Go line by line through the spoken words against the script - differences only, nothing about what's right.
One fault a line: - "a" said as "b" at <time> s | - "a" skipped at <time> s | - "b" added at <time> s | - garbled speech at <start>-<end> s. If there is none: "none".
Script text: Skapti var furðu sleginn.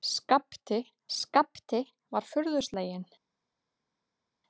- "skapti" added at 1.2 s